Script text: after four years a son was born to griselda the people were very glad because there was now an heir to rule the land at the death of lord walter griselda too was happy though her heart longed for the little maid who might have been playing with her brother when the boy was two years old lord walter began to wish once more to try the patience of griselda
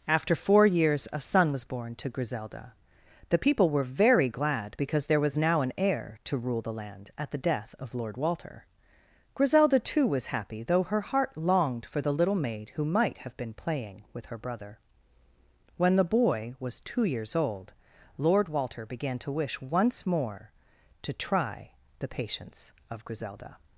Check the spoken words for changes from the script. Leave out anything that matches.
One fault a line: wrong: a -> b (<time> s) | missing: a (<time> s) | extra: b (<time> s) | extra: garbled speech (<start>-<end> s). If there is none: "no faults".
no faults